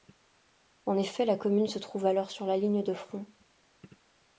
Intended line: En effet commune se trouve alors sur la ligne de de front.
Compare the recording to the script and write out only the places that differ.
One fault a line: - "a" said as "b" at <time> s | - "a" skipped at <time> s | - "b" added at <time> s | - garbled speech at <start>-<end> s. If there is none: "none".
- "la" added at 1.2 s
- "de" skipped at 3.0 s